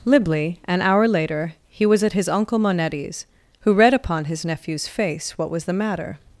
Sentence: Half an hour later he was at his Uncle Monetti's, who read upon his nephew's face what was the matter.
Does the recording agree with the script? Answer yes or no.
no